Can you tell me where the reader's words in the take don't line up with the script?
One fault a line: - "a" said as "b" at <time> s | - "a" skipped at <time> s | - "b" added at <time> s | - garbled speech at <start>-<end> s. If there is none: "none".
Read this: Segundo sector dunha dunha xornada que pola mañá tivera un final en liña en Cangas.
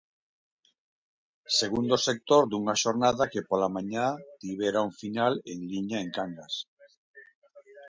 - "dunha" skipped at 2.8 s